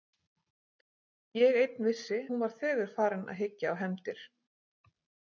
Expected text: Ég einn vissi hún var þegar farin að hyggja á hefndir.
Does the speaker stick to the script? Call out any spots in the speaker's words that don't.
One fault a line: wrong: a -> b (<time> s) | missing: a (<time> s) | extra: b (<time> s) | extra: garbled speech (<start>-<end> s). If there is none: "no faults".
no faults